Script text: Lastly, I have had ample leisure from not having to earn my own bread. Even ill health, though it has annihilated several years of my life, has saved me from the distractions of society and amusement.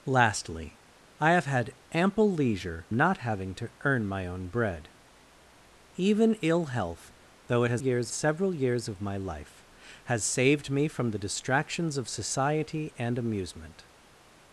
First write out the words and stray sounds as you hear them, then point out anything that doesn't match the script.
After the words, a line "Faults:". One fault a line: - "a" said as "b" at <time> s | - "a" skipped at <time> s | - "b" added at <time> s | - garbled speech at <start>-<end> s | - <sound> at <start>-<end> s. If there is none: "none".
Lastly, I have had ample leisure not having to earn my own bread. Even ill health, though it has years several years of my life, has saved me from the distractions of society and amusement.
Faults:
- "from" skipped at 2.9 s
- "annihilated" said as "years" at 7.8 s